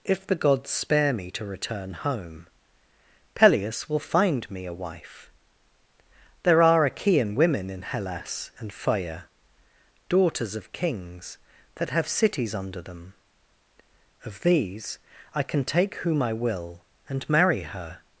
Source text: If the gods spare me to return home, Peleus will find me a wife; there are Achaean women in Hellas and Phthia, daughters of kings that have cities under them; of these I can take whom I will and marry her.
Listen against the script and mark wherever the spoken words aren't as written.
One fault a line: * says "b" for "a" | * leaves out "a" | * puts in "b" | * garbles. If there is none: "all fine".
all fine